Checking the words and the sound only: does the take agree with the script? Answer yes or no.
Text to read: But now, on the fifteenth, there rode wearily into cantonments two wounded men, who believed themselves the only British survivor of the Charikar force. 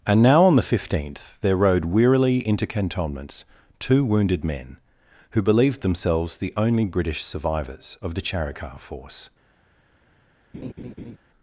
no